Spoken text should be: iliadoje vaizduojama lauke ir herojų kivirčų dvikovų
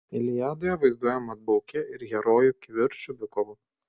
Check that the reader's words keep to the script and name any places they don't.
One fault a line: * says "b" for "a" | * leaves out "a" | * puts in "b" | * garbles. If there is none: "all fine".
all fine